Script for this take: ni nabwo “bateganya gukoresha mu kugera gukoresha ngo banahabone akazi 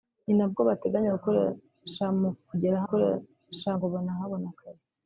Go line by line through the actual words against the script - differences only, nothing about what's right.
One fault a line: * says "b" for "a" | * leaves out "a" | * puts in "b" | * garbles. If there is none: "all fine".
all fine